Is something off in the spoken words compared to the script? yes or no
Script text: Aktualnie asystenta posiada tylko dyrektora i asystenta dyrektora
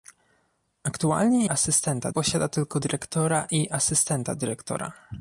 no